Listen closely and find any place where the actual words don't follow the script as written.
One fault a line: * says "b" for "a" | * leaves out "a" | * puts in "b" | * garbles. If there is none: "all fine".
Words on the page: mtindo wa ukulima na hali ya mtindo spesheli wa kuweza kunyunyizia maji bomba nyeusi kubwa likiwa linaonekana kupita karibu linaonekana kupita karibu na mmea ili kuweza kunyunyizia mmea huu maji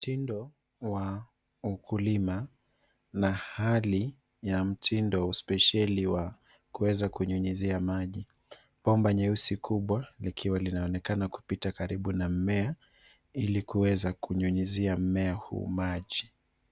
* leaves out "linaonekana kupita karibu"